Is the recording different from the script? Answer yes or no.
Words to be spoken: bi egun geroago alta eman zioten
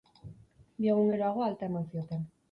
no